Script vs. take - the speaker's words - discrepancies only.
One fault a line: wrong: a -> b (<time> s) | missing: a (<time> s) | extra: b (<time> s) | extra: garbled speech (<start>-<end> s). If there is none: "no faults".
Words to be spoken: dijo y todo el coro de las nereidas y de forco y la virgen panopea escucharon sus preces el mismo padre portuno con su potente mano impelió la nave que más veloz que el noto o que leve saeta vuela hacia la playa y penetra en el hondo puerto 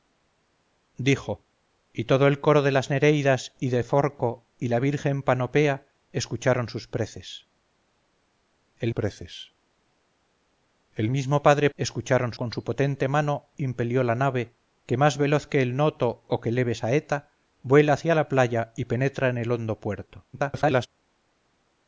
extra: preces el (8.9 s)
wrong: portuno -> escucharon (11.8 s)
extra: garbled speech (20.3-20.9 s)